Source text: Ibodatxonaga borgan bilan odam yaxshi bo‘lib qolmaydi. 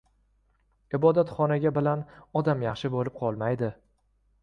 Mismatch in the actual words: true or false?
true